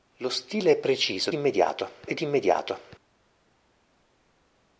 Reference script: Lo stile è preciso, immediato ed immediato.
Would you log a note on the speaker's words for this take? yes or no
no